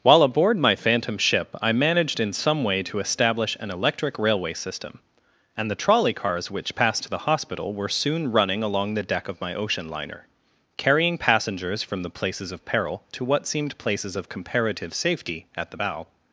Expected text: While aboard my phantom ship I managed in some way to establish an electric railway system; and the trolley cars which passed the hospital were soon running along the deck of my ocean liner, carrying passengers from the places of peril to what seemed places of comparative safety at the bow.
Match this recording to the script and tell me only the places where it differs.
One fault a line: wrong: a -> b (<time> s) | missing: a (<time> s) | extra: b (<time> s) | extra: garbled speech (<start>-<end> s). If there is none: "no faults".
extra: to (7.0 s)